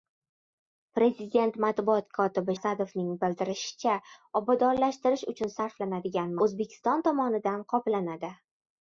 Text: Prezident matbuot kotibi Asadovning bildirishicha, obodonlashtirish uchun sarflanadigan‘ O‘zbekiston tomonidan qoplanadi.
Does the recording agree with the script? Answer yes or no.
yes